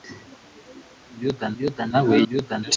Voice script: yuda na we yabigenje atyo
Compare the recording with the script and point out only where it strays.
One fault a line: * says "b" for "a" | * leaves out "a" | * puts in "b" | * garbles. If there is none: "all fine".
* puts in "yuda"
* says "yuda" for "yabigenje"